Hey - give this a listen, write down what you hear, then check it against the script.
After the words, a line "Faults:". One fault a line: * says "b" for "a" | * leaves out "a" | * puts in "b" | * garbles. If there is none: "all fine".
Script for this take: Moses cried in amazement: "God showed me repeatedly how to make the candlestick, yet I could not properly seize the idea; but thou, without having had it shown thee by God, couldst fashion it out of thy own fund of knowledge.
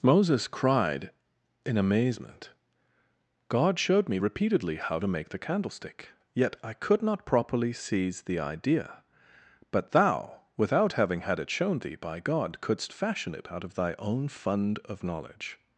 Moses cried in amazement: "God showed me repeatedly how to make the candlestick, yet I could not properly seize the idea; but thou, without having had it shown thee by God, couldst fashion it out of thy own fund of knowledge.
Faults:
all fine